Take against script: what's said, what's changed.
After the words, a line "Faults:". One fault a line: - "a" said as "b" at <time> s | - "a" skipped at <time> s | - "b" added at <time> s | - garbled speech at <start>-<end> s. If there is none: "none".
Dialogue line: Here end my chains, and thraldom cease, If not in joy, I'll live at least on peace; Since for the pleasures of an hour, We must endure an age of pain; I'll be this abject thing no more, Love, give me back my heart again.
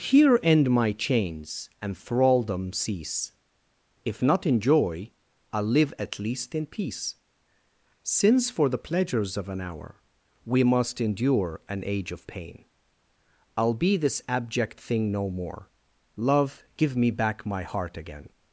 Here end my chains, and thraldom cease, If not in joy, I'll live at least in peace; Since for the pleasures of an hour, We must endure an age of pain; I'll be this abject thing no more, Love, give me back my heart again.
Faults:
- "on" said as "in" at 6.5 s